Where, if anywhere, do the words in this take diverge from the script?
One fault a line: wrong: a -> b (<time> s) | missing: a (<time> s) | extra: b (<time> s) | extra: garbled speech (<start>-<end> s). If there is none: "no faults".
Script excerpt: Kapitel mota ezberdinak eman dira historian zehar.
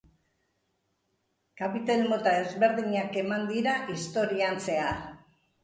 no faults